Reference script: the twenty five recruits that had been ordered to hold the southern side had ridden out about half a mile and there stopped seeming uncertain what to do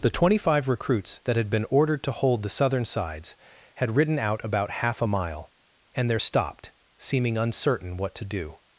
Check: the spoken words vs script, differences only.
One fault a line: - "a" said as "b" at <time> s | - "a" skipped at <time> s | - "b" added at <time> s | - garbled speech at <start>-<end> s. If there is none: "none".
- "side" said as "sides" at 2.8 s